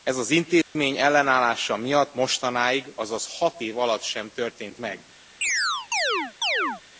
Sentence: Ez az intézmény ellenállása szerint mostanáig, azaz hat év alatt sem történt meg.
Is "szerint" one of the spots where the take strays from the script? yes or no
yes